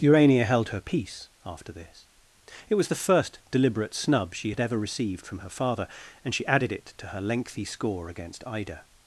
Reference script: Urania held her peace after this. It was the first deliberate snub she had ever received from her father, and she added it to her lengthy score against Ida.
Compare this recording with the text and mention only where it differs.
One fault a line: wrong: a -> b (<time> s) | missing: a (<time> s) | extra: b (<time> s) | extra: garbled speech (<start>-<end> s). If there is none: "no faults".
no faults